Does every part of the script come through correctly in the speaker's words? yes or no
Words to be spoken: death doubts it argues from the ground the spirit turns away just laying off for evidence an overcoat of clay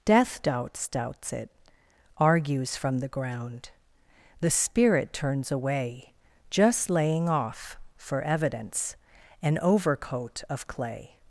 no